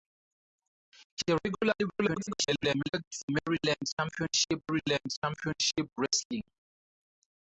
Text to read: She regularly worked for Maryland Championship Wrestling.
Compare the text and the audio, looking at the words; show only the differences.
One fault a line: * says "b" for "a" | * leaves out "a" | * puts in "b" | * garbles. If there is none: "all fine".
* garbles
* puts in "Maryland Championship"